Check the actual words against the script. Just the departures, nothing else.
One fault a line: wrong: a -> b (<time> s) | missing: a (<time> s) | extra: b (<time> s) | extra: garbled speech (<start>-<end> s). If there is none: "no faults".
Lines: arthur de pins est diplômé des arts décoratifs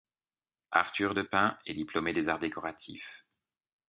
no faults